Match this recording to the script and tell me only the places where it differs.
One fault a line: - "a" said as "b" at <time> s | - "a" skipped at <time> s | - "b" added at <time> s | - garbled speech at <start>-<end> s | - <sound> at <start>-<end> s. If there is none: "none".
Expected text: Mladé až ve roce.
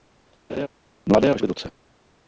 - laugh at 0.5-0.7 s